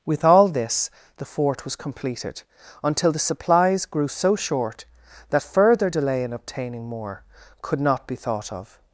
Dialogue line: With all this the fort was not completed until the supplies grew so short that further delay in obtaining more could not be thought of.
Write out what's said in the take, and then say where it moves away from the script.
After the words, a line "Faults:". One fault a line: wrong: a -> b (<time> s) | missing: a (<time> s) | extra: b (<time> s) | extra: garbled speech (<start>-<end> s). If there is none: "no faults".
With all this the fort was completed until the supplies grew so short that further delay in obtaining more could not be thought of.
Faults:
missing: not (1.8 s)